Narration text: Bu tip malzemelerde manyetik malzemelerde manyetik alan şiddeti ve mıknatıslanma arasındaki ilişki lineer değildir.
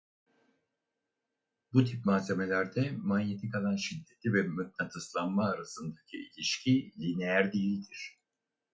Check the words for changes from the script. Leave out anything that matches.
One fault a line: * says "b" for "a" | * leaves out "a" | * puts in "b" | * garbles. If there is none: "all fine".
* leaves out "malzemelerde manyetik"